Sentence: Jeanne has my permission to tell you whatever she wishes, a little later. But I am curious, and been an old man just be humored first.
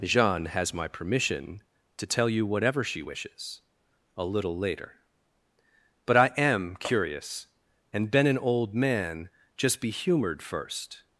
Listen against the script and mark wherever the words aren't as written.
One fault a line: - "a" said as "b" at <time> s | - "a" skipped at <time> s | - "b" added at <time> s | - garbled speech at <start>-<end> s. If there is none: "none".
none